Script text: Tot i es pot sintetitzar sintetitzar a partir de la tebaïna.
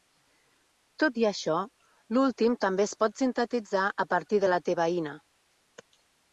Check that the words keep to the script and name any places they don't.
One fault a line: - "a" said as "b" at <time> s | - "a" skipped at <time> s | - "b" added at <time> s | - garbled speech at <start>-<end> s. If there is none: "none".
- "això l"últim també" added at 1.3 s
- "sintetitzar" skipped at 3.9 s